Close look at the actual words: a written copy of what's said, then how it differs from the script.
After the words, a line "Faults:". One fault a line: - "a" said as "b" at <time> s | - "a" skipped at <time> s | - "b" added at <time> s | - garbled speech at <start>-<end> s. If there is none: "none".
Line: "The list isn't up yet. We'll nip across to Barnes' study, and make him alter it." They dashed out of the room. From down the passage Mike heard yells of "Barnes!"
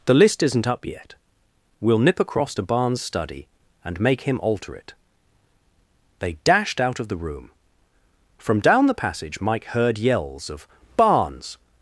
"The list isn't up yet. We'll nip across to Barnes' study, and make him alter it." They dashed out of the room. From down the passage Mike heard yells of "Barnes!"
Faults:
none